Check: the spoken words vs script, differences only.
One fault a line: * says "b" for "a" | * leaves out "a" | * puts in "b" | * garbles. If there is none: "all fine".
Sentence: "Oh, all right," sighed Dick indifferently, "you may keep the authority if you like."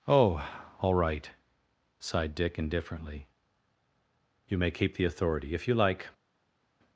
all fine